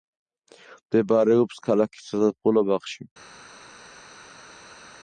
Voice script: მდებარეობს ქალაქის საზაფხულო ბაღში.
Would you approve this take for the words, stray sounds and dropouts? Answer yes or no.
yes